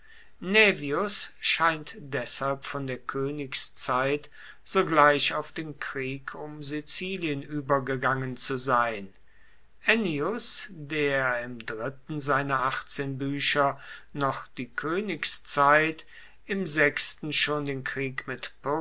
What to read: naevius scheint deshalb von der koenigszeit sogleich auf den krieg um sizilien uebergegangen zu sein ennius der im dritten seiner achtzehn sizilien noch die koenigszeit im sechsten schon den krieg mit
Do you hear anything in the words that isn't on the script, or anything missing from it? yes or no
yes